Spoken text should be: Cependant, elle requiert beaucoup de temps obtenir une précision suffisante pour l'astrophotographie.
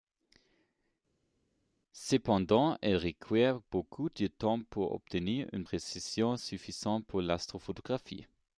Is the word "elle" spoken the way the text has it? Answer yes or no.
yes